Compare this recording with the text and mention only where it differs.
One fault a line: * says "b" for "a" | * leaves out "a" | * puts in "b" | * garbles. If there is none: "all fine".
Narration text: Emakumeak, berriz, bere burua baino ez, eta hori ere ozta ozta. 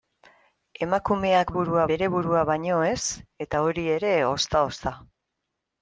* says "burua" for "berriz"